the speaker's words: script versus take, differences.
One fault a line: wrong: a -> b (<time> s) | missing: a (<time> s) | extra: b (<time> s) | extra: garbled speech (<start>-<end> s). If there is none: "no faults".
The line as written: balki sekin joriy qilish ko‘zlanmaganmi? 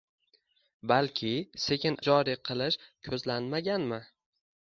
no faults